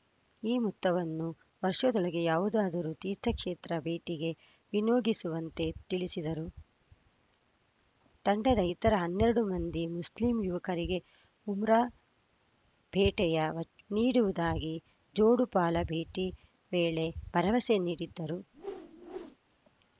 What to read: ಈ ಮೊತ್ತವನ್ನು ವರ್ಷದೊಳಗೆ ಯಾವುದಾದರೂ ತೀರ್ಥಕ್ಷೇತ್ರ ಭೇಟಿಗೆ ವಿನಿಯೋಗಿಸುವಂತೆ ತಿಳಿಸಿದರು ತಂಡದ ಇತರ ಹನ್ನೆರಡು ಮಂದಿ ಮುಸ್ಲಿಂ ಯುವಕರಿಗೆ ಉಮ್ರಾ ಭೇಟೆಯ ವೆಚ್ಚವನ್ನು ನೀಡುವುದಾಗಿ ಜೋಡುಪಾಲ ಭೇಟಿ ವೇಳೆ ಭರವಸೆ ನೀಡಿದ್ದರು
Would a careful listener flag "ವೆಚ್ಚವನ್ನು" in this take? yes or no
yes